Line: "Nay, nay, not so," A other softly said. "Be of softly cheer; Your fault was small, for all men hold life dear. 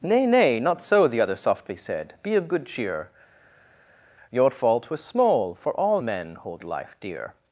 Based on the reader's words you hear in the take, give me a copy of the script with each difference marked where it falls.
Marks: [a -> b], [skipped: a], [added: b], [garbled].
"Nay, nay, not so," [A -> The] other softly said. "Be of [softly -> good] cheer; Your fault was small, for all men hold life dear.